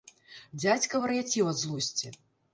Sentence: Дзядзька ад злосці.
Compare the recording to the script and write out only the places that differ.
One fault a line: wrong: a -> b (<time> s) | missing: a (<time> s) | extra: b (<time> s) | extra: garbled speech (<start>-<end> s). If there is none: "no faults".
extra: вар'яцеў (1.0 s)